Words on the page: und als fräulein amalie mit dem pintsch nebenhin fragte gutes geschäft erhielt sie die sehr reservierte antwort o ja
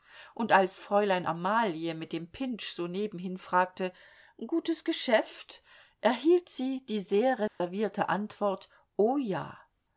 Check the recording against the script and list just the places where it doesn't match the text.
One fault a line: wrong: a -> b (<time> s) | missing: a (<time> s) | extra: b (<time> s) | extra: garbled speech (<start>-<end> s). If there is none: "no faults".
extra: so (2.7 s)